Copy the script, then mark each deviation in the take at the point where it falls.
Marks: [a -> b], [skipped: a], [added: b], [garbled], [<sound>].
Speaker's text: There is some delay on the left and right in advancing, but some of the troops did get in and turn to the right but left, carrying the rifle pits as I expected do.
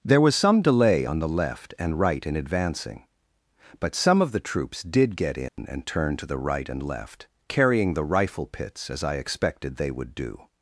There [is -> was] some delay on the left and right in advancing, but some of the troops did get in [dropout] and turn to the right [but -> and] left, carrying the rifle pits as I expected [added: they would] do.